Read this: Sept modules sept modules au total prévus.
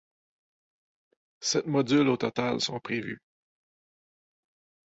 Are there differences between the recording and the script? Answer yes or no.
yes